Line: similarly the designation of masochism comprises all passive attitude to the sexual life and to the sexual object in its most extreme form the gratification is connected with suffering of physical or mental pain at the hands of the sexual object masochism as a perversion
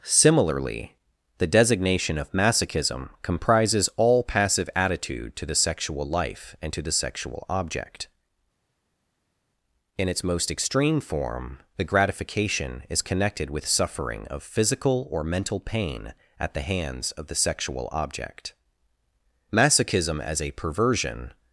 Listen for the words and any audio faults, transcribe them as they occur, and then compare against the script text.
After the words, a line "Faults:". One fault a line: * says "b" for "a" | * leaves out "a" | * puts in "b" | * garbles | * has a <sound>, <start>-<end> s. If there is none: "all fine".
similarly the designation of masochism comprises all passive attitude to the sexual life and to the sexual object in its most extreme form the gratification is connected with suffering of physical or mental pain at the hands of the sexual object masochism as a perversion
Faults:
all fine